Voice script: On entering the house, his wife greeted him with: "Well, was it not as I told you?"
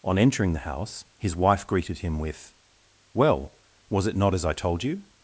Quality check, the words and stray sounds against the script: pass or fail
pass